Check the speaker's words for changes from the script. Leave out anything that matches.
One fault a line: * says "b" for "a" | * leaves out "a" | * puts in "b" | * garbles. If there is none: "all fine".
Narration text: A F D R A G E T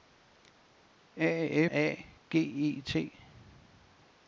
* leaves out "F D R"